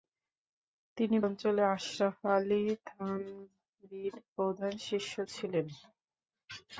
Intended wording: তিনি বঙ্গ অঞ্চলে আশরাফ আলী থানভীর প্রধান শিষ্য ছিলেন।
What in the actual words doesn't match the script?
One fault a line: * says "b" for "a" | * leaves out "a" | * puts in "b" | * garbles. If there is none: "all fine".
* leaves out "বঙ্গ"